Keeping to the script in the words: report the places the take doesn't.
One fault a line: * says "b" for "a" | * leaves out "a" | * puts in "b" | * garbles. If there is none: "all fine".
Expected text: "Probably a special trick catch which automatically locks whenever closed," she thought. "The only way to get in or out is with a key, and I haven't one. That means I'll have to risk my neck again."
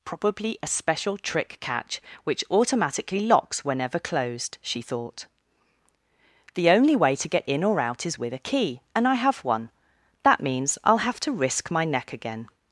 * says "have" for "haven't"